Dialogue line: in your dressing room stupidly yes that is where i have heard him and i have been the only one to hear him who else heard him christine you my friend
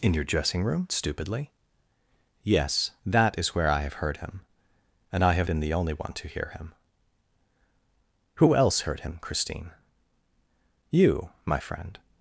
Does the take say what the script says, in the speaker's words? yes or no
yes